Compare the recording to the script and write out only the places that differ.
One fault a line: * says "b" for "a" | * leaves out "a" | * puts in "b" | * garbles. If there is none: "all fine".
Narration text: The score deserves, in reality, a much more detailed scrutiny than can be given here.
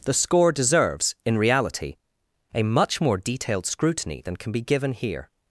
all fine